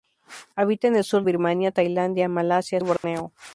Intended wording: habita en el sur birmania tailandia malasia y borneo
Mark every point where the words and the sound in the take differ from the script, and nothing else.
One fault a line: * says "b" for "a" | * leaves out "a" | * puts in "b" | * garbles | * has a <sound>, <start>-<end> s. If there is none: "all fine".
* has a dropout, 3.0-3.0 s